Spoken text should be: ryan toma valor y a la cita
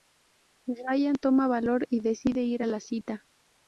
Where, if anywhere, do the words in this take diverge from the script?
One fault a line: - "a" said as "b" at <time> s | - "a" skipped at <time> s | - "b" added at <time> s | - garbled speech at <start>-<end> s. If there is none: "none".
- "decide ir" added at 2.0 s